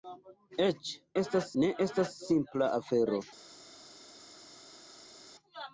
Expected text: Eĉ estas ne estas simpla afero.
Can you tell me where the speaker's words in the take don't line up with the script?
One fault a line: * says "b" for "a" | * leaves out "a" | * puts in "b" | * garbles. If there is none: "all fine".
all fine